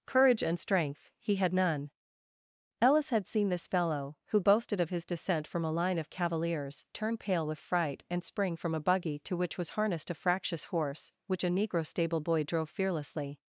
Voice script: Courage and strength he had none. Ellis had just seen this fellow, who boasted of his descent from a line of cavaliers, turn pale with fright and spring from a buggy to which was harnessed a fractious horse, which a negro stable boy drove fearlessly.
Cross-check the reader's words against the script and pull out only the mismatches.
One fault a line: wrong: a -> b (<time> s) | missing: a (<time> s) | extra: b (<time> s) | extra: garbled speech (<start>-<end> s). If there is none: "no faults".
missing: just (3.3 s)